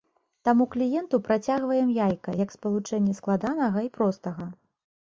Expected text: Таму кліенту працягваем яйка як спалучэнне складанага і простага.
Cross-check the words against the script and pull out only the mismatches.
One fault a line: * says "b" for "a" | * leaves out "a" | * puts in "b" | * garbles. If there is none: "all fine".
all fine